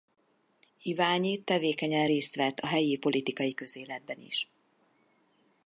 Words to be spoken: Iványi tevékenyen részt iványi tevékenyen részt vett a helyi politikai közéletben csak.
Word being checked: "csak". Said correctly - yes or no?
no